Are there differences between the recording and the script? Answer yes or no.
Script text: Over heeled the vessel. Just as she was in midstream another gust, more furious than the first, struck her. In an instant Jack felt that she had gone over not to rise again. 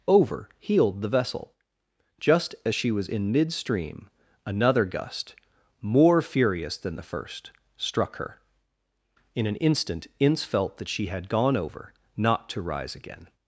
yes